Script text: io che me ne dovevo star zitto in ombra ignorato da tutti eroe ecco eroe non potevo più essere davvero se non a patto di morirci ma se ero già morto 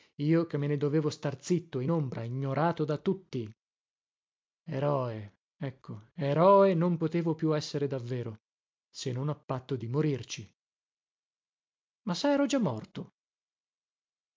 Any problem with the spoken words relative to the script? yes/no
no